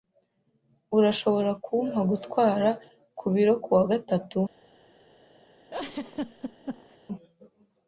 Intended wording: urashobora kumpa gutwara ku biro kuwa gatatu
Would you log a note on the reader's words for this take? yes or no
no